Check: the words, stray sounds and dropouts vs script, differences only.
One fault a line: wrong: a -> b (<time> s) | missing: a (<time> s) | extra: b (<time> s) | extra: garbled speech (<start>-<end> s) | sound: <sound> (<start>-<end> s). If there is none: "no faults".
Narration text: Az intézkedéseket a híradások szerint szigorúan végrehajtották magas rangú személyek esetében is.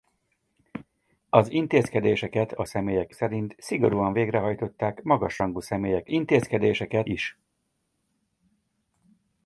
wrong: híradások -> személyek (2.6 s)
wrong: esetében -> intézkedéseket (6.1 s)